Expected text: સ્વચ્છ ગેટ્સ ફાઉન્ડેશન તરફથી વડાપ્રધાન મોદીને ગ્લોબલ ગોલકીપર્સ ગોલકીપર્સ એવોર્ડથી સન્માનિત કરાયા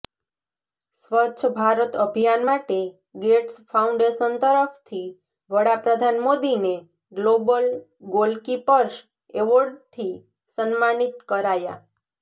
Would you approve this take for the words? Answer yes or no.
no